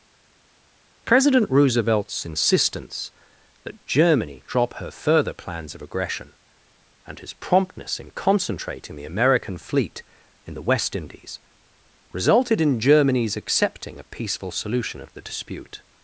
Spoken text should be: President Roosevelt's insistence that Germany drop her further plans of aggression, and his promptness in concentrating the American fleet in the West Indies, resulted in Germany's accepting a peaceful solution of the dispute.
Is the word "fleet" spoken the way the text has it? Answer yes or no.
yes